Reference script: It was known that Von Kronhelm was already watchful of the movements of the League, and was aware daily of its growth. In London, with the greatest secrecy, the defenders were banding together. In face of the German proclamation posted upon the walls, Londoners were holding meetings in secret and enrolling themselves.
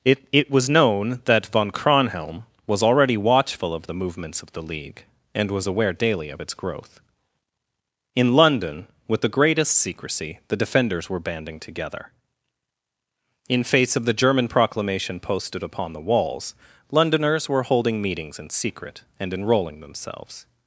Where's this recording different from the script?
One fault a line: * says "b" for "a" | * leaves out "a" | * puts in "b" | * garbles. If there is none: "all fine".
* puts in "it"